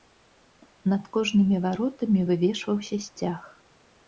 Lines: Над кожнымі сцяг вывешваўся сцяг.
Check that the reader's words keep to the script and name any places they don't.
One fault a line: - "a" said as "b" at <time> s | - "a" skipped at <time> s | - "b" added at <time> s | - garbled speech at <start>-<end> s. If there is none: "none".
- "сцяг" said as "варотамі" at 1.7 s